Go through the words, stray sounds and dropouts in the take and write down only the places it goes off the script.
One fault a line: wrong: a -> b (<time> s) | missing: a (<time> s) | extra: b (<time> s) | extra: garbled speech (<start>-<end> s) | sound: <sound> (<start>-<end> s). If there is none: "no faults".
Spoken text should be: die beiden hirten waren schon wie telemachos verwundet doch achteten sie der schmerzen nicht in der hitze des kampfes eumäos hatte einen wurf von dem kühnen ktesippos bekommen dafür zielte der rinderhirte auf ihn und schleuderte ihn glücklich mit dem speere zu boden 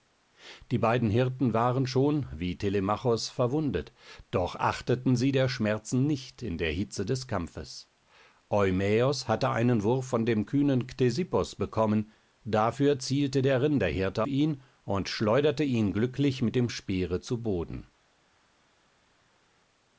missing: auf (14.2 s)